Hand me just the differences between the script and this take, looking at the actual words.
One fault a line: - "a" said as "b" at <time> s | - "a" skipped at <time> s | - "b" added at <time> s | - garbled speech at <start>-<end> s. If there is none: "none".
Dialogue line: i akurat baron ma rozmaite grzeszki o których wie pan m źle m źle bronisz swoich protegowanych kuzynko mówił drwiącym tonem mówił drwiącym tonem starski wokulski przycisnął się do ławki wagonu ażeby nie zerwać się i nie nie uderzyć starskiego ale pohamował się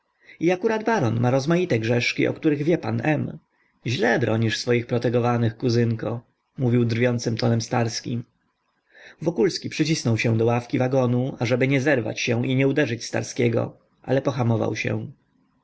- "m źle" skipped at 4.2 s
- "mówił drwiącym tonem" skipped at 7.6 s
- "nie" skipped at 12.7 s